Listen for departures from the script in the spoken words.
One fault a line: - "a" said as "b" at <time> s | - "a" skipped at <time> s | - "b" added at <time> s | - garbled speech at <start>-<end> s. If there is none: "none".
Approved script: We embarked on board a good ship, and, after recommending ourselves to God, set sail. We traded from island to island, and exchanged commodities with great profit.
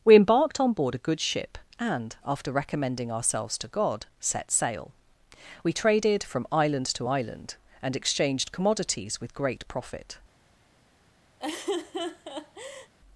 none